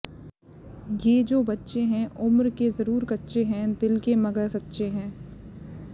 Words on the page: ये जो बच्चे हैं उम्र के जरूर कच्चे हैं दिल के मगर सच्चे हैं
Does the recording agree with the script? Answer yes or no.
yes